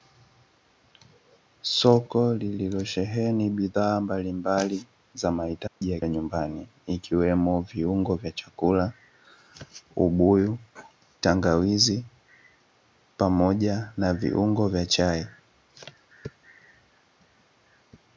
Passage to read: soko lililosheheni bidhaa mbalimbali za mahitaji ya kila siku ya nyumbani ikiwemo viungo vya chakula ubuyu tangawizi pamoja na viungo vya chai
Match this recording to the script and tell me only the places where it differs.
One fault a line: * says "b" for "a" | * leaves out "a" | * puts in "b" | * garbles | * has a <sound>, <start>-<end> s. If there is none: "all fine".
* has a dropout, 5.7-5.8 s
* leaves out "kila siku"